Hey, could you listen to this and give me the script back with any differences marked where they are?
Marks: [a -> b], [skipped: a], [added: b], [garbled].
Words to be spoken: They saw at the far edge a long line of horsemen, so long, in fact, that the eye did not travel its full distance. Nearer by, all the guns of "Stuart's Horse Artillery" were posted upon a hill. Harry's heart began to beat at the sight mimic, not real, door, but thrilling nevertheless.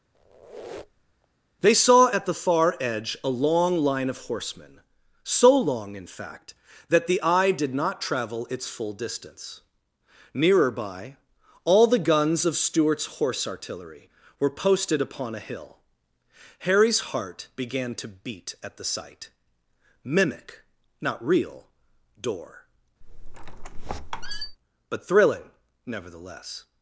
They saw at the far edge a long line of horsemen, so long, in fact, that the eye did not travel its full distance. Nearer by, all the guns of "Stuart's Horse Artillery" were posted upon a hill. Harry's heart began to beat at the sight mimic, not real, door, but thrilling nevertheless.